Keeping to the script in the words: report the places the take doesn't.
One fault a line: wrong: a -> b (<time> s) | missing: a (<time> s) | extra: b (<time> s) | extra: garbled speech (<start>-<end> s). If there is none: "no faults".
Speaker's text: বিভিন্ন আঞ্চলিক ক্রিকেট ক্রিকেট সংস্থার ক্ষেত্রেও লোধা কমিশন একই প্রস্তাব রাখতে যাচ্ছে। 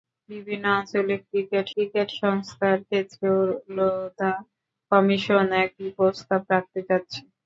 no faults